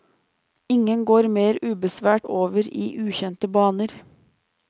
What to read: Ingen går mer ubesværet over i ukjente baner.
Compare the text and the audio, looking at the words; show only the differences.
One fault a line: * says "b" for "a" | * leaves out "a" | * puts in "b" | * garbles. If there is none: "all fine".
all fine